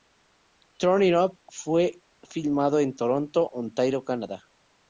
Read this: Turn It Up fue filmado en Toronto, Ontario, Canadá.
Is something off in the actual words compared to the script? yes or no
no